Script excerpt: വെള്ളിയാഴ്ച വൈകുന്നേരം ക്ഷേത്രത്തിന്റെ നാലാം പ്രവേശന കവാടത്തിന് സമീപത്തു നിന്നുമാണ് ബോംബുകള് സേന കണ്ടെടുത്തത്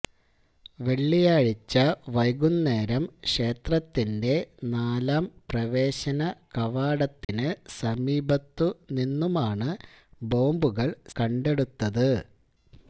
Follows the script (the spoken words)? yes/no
no